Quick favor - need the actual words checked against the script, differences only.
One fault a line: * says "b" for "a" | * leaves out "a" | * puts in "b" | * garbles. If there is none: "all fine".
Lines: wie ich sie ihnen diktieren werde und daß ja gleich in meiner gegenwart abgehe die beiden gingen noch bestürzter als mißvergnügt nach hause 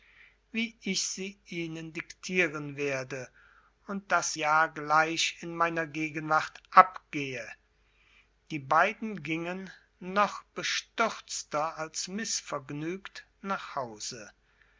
all fine